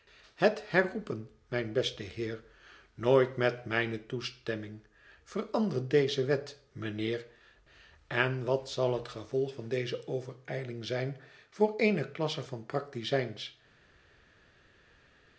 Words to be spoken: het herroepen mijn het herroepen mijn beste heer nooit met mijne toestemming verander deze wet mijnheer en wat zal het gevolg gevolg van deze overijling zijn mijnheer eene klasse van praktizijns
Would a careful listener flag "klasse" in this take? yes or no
no